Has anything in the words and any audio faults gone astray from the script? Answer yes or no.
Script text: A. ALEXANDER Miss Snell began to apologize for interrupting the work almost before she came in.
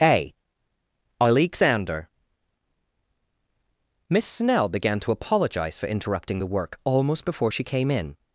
no